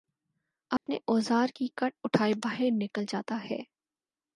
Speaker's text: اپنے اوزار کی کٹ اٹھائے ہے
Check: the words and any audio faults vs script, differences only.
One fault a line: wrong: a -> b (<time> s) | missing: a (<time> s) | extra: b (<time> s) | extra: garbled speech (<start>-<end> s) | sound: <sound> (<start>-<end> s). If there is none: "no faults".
sound: dropout (0.8-0.9 s)
extra: باہر نکل جاتا (2.4 s)